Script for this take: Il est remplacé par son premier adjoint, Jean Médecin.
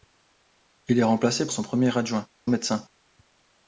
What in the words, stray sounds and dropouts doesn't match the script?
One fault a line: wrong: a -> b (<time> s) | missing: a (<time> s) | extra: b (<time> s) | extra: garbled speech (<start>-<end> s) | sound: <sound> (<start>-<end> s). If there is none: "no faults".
missing: par (1.5 s)
missing: Jean (2.2 s)